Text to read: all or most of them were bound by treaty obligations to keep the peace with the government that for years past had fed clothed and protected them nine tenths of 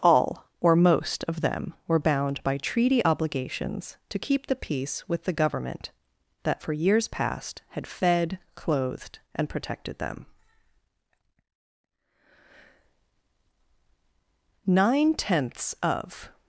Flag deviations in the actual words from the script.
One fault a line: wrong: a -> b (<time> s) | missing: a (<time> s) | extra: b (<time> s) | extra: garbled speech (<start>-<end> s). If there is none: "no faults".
no faults